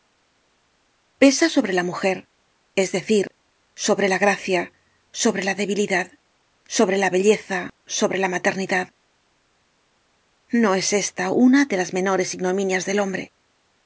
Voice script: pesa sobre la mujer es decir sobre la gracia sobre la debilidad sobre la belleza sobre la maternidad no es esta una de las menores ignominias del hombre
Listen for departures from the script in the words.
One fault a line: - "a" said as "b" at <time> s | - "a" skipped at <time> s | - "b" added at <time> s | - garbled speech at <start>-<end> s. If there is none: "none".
none